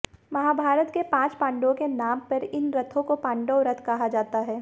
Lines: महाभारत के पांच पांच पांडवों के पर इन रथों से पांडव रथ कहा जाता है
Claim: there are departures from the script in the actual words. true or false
true